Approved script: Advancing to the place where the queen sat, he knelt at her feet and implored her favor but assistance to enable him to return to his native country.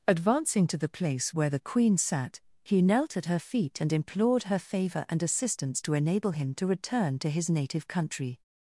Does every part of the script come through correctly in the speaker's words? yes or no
no